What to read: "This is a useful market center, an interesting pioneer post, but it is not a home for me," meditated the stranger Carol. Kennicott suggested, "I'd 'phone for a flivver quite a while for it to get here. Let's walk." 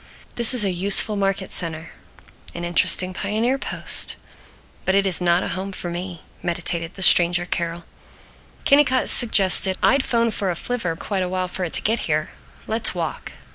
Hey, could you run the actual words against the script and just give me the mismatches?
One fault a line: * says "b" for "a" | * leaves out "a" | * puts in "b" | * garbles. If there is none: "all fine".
all fine